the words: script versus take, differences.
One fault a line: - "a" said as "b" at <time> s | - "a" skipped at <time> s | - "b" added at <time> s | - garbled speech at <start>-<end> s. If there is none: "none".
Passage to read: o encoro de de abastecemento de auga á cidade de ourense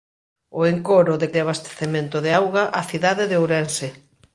none